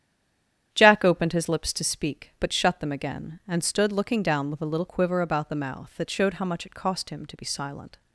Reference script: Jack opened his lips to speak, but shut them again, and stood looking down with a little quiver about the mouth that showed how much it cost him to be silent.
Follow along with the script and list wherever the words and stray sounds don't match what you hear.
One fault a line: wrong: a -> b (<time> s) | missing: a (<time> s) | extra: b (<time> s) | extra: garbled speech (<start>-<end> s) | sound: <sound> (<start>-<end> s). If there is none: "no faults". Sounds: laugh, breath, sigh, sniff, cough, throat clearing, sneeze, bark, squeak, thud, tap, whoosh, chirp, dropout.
no faults